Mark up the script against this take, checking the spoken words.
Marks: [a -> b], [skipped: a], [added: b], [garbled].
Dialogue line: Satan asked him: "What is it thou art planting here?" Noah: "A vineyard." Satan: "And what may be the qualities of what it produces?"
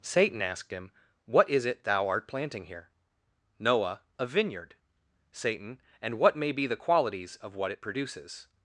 Satan asked him: "What is it thou art planting here?" Noah: "A vineyard." Satan: "And what may be the qualities of what it produces?"